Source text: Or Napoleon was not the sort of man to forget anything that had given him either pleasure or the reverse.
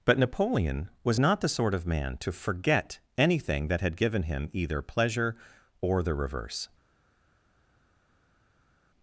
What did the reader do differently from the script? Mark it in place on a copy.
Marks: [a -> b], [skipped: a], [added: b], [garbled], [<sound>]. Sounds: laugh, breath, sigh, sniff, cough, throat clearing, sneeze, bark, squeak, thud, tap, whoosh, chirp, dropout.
[Or -> But] Napoleon was not the sort of man to forget anything that had given him either pleasure or the reverse.